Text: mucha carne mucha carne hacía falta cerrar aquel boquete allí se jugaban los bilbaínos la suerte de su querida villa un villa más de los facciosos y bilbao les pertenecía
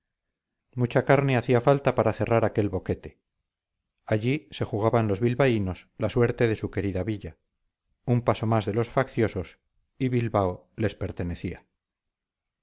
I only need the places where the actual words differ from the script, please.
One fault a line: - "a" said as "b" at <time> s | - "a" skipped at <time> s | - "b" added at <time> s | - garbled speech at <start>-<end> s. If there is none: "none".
- "mucha carne" skipped at 1.4 s
- "para" added at 2.0 s
- "villa" said as "paso" at 8.2 s